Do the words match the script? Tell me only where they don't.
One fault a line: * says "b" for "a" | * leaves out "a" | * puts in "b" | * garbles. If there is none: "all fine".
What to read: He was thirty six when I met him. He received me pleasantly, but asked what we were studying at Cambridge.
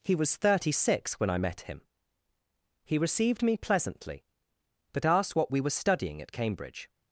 all fine